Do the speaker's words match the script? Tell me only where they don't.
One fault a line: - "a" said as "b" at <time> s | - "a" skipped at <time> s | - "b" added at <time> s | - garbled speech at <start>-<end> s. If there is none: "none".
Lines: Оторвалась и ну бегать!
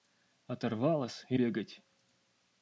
- "ну" skipped at 1.4 s